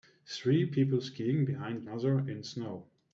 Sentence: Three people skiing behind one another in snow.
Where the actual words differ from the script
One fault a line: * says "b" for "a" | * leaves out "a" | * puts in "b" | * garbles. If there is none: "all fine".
* leaves out "one"